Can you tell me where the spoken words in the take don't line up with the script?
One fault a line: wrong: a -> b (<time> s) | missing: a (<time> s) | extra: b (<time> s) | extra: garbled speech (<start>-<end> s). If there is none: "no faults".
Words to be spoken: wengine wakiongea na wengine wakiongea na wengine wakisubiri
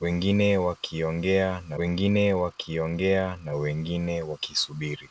no faults